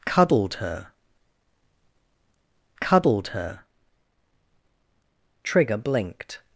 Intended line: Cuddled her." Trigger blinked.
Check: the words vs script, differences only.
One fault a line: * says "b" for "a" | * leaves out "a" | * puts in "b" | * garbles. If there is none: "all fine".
* puts in "cuddled her"